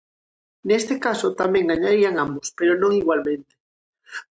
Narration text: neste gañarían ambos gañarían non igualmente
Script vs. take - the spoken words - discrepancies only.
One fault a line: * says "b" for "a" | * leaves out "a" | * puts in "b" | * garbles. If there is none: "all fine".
* puts in "caso tamén"
* says "pero" for "gañarían"